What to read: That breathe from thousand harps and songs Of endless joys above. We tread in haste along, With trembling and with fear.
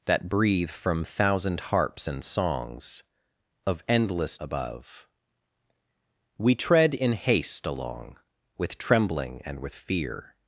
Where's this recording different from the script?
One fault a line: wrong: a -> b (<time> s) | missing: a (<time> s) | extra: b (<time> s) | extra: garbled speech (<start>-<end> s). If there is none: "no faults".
missing: joys (4.4 s)